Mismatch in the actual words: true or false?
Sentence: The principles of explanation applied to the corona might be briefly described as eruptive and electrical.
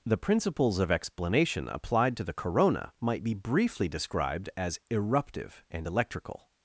false